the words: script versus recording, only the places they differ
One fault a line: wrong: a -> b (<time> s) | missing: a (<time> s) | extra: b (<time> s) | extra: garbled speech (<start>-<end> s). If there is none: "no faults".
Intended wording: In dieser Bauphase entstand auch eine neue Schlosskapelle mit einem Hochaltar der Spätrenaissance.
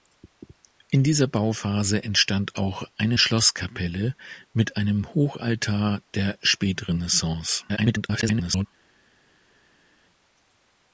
missing: neue (3.2 s)
extra: garbled speech (7.7-8.7 s)